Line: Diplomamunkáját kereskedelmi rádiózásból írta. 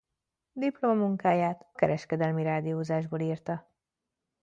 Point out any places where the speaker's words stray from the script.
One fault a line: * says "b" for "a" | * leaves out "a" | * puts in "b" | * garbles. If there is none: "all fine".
all fine